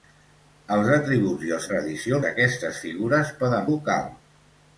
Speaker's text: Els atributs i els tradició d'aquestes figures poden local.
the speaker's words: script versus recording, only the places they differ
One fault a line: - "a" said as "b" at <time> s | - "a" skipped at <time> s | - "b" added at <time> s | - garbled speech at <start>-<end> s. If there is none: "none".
none